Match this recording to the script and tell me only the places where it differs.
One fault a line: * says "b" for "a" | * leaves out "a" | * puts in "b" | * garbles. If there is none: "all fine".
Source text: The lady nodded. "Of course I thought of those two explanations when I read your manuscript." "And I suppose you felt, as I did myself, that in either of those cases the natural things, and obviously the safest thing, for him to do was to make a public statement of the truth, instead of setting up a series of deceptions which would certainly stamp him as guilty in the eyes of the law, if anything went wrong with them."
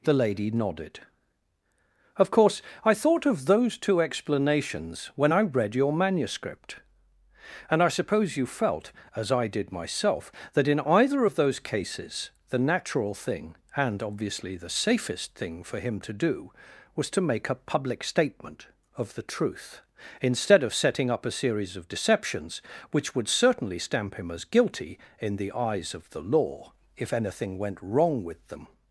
* says "thing" for "things"